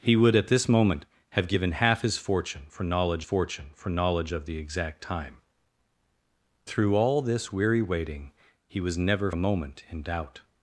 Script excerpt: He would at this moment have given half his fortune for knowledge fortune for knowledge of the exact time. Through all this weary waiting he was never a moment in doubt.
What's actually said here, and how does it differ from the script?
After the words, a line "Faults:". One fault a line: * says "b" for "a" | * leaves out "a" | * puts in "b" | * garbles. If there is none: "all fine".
He would at this moment have given half his fortune for knowledge fortune for knowledge of the exact time. Through all this weary waiting he was never a moment in doubt.
Faults:
all fine